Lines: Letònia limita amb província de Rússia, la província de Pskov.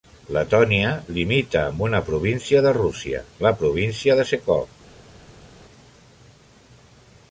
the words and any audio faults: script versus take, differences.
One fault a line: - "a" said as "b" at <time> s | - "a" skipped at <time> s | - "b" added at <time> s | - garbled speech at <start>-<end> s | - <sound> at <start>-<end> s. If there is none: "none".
- "una" added at 1.9 s